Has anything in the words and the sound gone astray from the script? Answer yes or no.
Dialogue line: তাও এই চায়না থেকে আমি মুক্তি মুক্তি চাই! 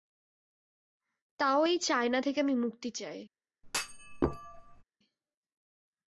yes